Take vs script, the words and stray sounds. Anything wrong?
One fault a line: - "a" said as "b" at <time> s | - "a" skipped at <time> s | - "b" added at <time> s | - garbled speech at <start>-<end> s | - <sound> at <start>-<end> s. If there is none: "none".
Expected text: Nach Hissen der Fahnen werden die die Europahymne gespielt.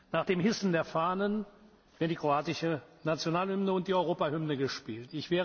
- "dem" added at 0.2 s
- "kroatische Nationalhymne und" added at 2.2 s